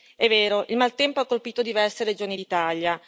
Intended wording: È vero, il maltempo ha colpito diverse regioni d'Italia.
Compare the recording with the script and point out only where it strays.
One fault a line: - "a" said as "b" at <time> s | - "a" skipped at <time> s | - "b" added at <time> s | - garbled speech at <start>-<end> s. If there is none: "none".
none